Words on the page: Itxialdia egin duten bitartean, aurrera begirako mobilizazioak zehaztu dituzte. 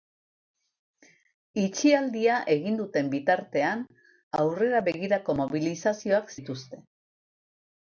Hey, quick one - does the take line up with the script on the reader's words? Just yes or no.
no